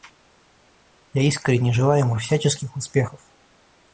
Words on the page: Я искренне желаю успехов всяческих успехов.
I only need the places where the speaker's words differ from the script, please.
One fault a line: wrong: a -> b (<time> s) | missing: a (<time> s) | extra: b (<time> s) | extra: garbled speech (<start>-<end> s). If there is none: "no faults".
wrong: успехов -> ему (2.0 s)